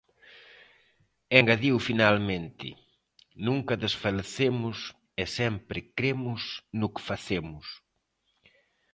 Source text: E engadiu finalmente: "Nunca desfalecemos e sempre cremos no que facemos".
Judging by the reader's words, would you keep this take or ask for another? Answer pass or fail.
pass